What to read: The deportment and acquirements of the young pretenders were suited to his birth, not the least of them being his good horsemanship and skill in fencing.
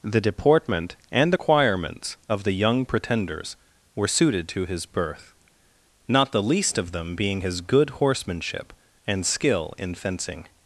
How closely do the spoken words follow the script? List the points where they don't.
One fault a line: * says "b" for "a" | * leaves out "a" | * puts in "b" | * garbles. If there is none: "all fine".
all fine